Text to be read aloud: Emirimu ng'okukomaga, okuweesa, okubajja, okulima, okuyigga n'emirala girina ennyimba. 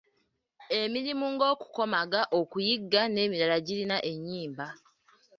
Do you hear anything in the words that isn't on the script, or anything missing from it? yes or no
yes